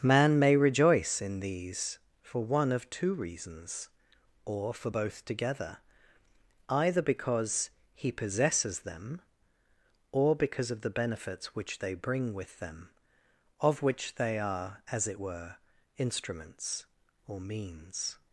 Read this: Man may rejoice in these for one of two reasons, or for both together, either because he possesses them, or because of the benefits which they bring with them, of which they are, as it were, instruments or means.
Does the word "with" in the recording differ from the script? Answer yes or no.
no